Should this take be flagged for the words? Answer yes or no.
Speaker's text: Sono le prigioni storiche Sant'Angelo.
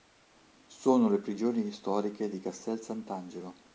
yes